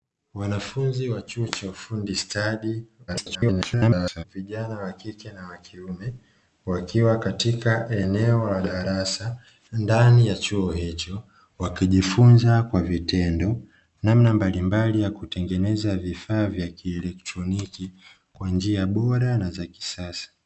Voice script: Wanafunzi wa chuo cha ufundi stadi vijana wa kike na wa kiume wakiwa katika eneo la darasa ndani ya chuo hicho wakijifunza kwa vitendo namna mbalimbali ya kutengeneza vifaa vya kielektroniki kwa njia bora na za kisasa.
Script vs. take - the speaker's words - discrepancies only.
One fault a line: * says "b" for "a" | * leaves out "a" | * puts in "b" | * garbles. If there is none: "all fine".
* garbles